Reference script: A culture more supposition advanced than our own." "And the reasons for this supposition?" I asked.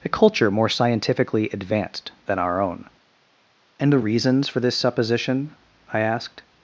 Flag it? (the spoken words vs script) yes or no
yes